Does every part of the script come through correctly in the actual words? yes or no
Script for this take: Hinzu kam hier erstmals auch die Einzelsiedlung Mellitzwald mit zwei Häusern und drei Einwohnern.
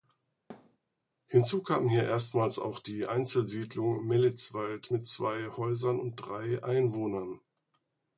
yes